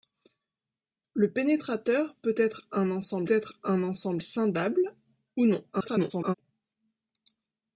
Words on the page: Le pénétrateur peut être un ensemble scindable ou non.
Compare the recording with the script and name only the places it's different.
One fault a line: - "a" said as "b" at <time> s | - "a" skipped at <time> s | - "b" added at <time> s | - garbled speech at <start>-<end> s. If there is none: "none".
- "être un ensemble" added at 3.3 s
- garbled speech at 5.7-6.3 s